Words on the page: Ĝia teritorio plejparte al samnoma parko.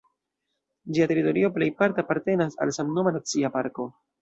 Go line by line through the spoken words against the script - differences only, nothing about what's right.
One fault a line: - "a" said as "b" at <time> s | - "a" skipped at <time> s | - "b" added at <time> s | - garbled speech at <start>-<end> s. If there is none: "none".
- "apartenas" added at 2.0 s
- "nacia" added at 3.2 s